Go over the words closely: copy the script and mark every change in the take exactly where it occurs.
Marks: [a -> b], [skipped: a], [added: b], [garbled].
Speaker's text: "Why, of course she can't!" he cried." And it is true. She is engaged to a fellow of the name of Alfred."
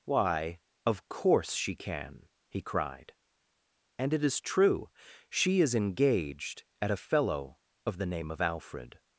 "Why, of course she [can't!" -> can] he cried." And it is true. She is engaged [to -> at] a fellow of the name of Alfred."